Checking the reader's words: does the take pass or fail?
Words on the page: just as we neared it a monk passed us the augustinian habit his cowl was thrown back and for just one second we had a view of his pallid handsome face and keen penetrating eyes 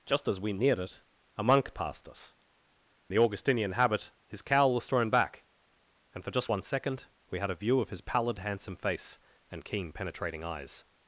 pass